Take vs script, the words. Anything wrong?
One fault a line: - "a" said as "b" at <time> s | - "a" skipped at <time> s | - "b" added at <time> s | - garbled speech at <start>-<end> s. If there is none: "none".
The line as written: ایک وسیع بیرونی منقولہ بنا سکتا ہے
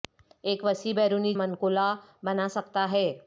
none